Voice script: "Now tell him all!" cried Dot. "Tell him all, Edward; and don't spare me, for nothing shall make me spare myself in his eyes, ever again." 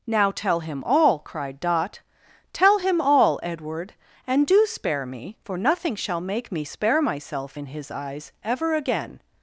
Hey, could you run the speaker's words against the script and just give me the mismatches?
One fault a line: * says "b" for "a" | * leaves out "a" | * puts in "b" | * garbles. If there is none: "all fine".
* says "do" for "don't"